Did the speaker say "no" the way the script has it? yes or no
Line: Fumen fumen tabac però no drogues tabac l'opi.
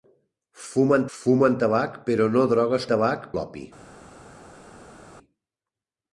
yes